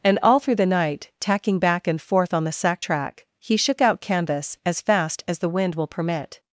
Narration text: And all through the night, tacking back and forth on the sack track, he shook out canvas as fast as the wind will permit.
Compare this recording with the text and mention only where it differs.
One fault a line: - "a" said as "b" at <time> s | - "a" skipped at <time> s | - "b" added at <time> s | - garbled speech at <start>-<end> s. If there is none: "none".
none